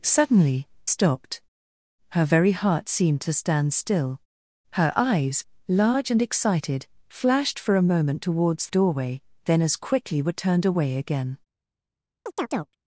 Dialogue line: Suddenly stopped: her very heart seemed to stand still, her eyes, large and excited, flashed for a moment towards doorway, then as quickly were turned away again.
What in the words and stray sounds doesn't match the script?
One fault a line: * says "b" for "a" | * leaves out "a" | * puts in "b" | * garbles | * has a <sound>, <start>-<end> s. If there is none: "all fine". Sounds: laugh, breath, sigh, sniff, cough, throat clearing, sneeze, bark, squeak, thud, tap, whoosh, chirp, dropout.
* has a chirp, 12.3-12.8 s